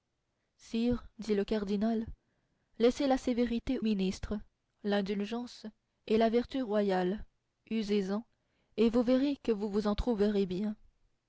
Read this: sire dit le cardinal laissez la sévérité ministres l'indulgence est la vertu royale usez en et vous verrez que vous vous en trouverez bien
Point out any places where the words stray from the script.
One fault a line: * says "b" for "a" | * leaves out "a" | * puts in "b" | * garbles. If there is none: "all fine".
all fine